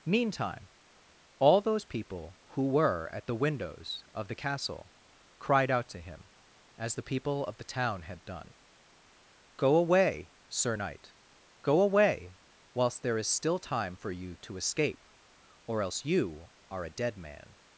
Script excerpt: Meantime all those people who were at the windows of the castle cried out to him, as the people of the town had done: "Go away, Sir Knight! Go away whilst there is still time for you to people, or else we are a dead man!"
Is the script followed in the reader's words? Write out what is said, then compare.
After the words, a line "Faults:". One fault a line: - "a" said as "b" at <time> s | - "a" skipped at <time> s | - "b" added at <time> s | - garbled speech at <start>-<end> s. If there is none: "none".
Meantime all those people who were at the windows of the castle cried out to him, as the people of the town had done: "Go away, Sir Knight! Go away whilst there is still time for you to escape, or else you are a dead man!"
Faults:
- "people" said as "escape" at 14.5 s
- "we" said as "you" at 16.0 s